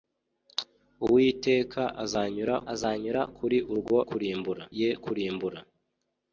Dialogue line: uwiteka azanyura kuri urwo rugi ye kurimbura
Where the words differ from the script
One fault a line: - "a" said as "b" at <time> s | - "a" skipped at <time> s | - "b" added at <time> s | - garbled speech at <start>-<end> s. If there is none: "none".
- "azanyura" added at 2.7 s
- "rugi" said as "kurimbura" at 4.1 s